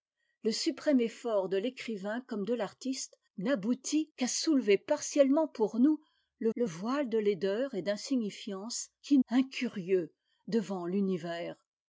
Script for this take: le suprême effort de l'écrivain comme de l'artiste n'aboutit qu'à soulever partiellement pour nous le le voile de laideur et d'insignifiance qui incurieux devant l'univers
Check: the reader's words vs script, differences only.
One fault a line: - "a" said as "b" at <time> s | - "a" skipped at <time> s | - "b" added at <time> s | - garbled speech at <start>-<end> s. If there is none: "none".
none